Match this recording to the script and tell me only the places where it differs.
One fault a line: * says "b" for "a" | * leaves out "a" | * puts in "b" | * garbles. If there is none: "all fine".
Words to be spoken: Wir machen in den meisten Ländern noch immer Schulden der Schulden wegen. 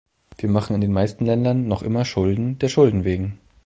all fine